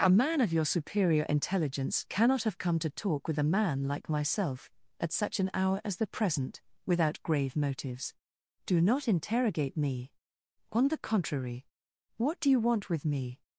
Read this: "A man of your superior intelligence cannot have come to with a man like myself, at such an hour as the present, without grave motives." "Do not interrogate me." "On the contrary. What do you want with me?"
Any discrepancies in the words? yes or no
yes